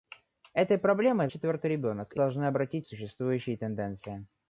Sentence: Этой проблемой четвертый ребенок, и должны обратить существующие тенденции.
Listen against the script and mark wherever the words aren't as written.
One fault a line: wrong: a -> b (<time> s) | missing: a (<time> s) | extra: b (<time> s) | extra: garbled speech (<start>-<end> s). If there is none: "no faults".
no faults